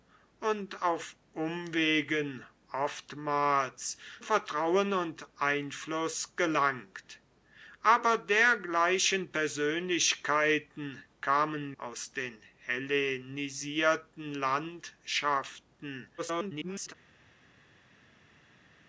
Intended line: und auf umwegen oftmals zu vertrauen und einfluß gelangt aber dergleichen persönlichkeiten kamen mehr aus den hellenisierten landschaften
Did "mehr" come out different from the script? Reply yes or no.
yes